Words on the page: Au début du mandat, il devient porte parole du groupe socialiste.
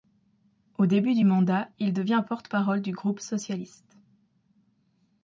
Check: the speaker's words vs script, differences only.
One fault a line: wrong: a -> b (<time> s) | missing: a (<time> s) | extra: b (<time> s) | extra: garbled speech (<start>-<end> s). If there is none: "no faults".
no faults